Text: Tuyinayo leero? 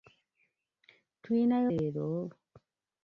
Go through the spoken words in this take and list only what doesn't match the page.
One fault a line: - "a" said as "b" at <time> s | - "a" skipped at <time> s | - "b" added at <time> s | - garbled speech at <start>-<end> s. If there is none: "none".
none